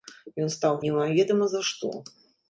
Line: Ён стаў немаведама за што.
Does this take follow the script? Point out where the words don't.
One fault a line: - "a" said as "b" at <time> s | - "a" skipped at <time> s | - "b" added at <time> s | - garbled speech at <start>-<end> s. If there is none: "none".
none